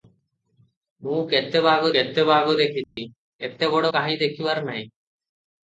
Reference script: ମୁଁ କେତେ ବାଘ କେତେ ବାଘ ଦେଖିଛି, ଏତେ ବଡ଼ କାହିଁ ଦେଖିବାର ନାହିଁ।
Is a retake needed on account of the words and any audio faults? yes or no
yes